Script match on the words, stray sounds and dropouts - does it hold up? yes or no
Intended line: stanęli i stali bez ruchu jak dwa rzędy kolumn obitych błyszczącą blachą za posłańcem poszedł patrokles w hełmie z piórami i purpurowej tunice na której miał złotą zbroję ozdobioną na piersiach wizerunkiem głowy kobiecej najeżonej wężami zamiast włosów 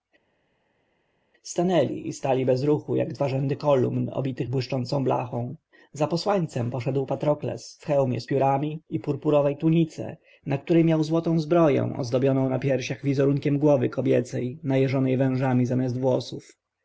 yes